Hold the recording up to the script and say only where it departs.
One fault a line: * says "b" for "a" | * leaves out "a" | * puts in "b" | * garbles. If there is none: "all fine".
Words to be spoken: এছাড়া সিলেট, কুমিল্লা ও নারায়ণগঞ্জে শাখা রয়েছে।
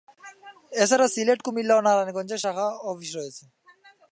* puts in "অফিস"